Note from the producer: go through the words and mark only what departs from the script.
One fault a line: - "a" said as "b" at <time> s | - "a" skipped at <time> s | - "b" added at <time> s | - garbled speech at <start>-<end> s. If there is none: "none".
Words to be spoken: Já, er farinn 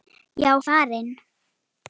none